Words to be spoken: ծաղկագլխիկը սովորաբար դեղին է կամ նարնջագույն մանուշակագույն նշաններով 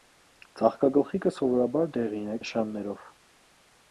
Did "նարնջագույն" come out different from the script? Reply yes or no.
yes